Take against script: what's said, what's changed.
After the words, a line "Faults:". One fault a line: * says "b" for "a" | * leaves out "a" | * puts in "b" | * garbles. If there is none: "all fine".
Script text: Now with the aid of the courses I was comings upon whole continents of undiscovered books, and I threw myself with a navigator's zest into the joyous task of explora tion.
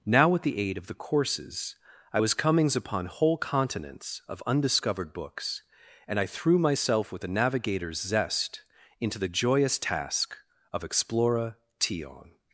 Now with the aid of the courses I was comings upon whole continents of undiscovered books, and I threw myself with a navigator's zest into the joyous task of explora tion.
Faults:
all fine